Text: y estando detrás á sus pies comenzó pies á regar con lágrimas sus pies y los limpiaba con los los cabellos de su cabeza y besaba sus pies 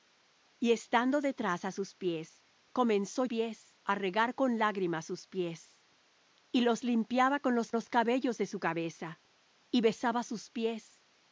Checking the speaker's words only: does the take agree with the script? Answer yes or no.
yes